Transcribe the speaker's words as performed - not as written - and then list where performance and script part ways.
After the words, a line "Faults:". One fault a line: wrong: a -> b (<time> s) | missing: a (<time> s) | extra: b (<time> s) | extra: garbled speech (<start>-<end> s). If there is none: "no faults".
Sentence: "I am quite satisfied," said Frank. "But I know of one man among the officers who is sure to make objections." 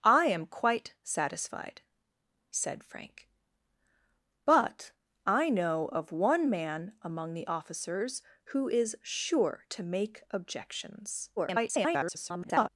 "I am quite satisfied," said Frank. "But I know of one man among the officers who is sure to make objections." [garbled]
Faults:
extra: garbled speech (11.4-12.7 s)